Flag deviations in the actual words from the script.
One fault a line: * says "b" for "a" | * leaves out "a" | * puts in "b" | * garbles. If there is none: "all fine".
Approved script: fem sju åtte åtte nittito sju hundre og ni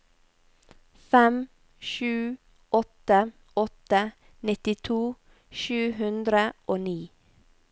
all fine